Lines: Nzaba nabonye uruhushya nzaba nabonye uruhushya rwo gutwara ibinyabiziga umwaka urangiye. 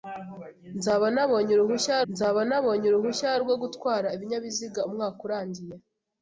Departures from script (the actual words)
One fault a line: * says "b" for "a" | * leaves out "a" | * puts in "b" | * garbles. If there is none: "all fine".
all fine